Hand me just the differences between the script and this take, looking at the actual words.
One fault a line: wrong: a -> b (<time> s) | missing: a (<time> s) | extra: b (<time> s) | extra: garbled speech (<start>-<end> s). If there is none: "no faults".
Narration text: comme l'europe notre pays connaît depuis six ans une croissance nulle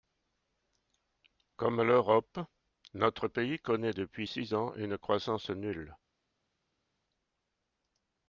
no faults